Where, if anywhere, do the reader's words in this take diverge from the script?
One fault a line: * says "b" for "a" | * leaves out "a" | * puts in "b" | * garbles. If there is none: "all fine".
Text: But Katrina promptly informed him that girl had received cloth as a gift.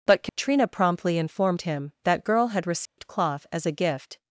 all fine